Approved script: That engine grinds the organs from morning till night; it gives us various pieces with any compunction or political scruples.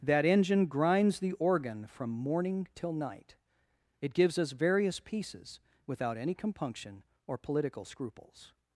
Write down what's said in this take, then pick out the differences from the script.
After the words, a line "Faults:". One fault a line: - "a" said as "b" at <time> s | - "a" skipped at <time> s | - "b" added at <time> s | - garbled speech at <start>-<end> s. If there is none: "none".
That engine grinds the organ from morning till night; it gives us various pieces without any compunction or political scruples.
Faults:
- "organs" said as "organ" at 1.3 s
- "with" said as "without" at 5.8 s